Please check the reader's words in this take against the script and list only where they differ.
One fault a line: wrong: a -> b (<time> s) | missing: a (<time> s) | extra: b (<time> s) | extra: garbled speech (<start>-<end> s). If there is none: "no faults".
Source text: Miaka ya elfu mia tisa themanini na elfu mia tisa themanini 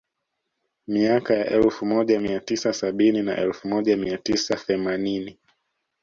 extra: moja (1.9 s)
wrong: themanini -> sabini (2.7 s)
extra: moja (3.7 s)